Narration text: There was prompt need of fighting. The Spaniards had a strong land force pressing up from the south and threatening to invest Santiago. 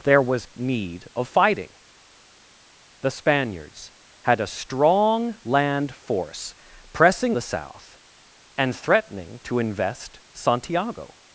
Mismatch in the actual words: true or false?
true